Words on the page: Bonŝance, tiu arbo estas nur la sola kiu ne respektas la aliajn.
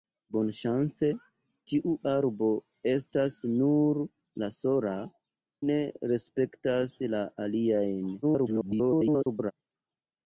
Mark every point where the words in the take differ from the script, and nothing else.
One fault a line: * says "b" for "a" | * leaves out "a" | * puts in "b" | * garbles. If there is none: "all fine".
* leaves out "kiu"
* garbles